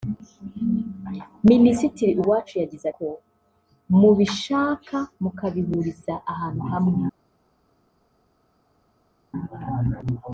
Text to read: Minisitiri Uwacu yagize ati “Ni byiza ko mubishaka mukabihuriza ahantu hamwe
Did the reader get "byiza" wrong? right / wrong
wrong